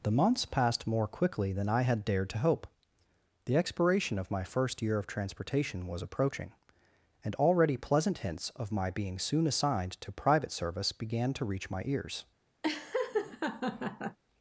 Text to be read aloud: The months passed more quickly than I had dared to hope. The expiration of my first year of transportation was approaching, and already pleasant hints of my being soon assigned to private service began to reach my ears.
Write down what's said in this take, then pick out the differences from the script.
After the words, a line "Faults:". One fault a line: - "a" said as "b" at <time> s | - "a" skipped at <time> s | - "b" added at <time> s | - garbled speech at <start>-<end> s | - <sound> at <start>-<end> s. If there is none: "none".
The months passed more quickly than I had dared to hope. The expiration of my first year of transportation was approaching, and already pleasant hints of my being soon assigned to private service began to reach my ears.
Faults:
- laugh at 12.6-14.2 s